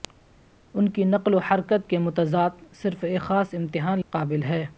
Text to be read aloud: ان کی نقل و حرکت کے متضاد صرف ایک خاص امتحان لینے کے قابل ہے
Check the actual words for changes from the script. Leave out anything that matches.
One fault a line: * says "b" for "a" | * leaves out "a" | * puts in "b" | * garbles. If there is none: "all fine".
* leaves out "لینے کے"